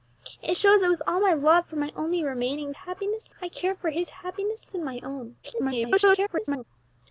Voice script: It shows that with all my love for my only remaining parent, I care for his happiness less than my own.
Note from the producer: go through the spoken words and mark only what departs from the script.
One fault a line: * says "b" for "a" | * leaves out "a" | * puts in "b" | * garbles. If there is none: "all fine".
* says "happiness" for "parent"
* leaves out "less"
* garbles